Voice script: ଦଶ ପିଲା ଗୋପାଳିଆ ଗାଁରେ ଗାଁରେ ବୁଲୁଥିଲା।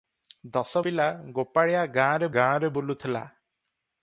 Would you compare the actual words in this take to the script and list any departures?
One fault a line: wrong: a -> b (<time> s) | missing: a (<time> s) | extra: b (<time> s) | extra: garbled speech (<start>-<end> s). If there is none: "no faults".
no faults